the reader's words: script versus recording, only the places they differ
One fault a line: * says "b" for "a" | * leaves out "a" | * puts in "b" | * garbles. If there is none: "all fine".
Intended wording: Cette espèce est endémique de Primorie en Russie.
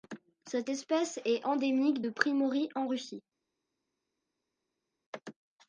all fine